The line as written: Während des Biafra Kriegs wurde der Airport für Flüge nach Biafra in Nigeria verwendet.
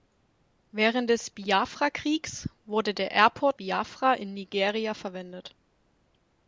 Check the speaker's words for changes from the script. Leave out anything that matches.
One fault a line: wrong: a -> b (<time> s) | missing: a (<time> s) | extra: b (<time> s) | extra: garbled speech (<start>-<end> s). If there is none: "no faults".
missing: für Flüge nach (3.6 s)